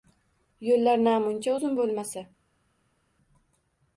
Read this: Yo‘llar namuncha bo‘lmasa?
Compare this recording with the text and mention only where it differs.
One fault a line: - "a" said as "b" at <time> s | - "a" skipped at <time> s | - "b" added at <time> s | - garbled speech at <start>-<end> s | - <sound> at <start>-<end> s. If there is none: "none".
- "uzun" added at 1.5 s